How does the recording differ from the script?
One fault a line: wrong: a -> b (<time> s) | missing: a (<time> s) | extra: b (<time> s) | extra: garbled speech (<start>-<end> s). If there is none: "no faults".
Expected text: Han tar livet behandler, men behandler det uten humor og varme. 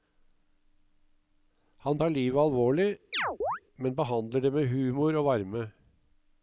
wrong: behandler -> alvorlig (2.4 s)
wrong: uten -> med (4.5 s)